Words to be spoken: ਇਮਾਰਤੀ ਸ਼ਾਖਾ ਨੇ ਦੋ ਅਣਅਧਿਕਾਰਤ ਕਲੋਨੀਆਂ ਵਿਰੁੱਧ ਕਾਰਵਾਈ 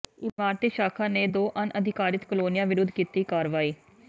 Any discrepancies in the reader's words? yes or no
yes